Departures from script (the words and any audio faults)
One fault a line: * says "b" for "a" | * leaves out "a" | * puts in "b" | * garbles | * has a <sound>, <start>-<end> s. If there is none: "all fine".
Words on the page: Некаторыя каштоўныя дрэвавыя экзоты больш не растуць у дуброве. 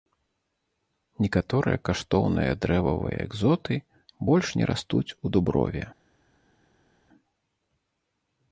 all fine